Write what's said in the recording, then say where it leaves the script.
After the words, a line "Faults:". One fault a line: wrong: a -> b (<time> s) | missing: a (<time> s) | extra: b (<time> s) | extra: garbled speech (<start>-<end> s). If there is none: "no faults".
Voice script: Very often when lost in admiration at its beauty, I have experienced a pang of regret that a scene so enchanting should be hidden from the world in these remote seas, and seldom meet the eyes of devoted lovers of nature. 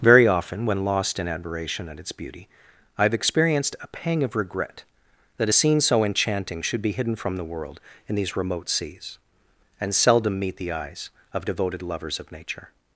Very often when lost in admiration at its beauty, I have experienced a pang of regret that a scene so enchanting should be hidden from the world in these remote seas, and seldom meet the eyes of devoted lovers of nature.
Faults:
no faults